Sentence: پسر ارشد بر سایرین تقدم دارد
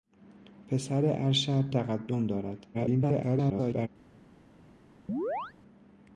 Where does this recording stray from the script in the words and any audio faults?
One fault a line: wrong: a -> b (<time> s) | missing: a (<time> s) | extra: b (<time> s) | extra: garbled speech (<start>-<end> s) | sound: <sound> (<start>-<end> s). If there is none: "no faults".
missing: بر سایرین (1.7 s)
extra: garbled speech (2.7-3.9 s)
sound: chirp (5.1-5.5 s)